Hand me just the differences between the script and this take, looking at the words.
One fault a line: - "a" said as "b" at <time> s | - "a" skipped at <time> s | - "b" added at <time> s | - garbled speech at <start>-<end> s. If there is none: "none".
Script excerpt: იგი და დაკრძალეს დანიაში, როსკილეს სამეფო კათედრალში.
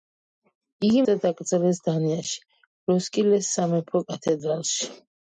none